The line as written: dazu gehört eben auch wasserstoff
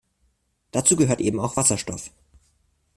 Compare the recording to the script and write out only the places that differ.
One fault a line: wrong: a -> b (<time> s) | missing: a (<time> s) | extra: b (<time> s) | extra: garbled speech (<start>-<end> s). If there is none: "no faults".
no faults